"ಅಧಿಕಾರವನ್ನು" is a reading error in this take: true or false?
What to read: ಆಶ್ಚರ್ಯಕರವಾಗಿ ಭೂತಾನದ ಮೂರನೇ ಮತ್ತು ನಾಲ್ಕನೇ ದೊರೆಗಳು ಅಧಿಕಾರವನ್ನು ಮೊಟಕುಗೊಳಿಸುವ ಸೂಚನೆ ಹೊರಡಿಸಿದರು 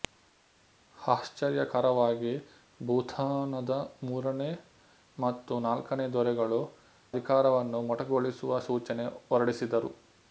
false